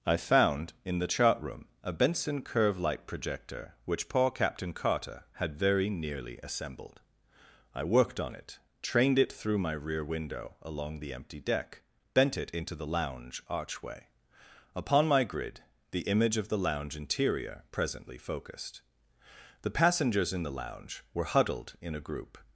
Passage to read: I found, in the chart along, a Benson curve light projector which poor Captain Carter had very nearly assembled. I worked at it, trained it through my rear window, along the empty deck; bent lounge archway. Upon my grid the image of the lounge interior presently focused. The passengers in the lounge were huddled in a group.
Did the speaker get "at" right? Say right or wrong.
wrong